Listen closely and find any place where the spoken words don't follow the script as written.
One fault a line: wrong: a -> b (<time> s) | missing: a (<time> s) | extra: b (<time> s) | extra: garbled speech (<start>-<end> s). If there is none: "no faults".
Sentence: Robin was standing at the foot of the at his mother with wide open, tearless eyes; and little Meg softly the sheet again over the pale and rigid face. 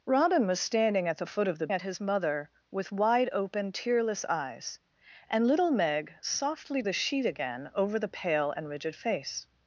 no faults